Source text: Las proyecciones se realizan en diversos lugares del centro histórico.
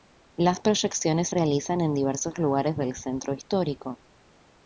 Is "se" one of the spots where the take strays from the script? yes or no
yes